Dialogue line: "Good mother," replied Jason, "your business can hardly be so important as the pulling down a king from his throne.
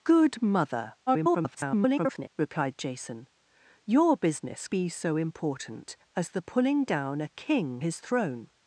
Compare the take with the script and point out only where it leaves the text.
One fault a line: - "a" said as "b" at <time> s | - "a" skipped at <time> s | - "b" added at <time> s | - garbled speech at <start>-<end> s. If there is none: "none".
- garbled speech at 1.1-2.3 s
- "can hardly" skipped at 4.7 s
- "from" skipped at 7.8 s